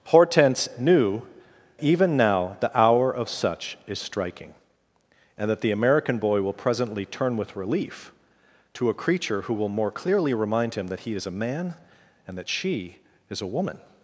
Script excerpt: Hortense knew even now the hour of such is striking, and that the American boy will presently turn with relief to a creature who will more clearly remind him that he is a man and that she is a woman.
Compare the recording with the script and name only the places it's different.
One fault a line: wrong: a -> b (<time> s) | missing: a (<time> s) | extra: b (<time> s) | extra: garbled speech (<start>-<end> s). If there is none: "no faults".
no faults